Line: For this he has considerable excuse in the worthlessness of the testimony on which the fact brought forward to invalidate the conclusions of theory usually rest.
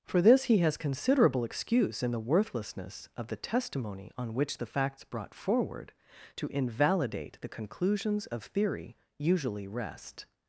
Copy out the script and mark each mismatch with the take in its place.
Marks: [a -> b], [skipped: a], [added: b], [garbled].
For this he has considerable excuse in the worthlessness of the testimony on which the [fact -> facts] brought forward to invalidate the conclusions of theory usually rest.